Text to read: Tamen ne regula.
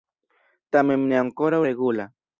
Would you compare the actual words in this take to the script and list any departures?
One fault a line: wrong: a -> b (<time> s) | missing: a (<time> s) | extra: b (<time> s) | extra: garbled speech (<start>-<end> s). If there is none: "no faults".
extra: ankoraŭ (1.2 s)